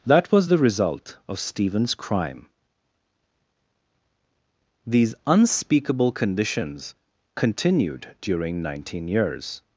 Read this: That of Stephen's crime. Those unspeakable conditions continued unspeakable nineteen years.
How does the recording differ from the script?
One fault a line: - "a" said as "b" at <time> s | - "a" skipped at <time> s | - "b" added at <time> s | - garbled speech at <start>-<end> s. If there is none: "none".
- "was the result" added at 0.3 s
- "Those" said as "These" at 4.9 s
- "unspeakable" said as "during" at 8.2 s